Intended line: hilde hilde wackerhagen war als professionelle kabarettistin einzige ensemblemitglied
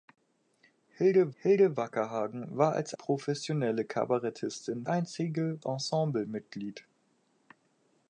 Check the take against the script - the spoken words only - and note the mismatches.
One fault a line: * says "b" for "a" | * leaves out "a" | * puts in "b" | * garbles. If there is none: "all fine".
all fine